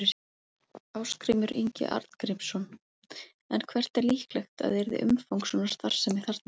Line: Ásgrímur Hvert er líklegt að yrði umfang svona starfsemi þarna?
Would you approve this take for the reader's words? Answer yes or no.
no